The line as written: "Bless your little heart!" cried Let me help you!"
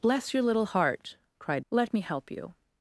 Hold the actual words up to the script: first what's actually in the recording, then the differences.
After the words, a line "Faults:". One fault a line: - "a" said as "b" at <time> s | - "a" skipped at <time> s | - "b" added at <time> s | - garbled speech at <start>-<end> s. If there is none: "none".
"Bless your little heart!" cried Let me help you!"
Faults:
none